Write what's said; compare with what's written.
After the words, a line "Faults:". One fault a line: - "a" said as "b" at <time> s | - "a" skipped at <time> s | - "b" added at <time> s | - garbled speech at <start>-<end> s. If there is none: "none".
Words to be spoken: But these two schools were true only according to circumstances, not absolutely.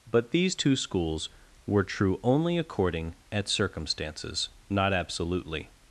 But these two schools were true only according at circumstances, not absolutely.
Faults:
- "to" said as "at" at 3.3 s